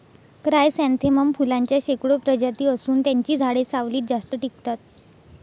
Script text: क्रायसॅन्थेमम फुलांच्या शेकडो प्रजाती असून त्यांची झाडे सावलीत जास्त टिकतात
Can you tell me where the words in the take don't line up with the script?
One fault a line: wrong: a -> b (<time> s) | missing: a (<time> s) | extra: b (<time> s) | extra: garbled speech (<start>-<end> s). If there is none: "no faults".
no faults